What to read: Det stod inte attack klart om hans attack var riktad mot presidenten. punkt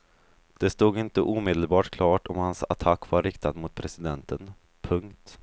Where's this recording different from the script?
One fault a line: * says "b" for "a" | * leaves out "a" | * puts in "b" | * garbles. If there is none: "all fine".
* says "omedelbart" for "attack"